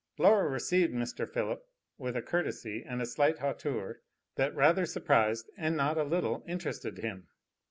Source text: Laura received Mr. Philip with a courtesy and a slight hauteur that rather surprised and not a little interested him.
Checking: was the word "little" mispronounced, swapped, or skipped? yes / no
no